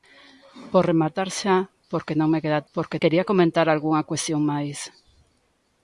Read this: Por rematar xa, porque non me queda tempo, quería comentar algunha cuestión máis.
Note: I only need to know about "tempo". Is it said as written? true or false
false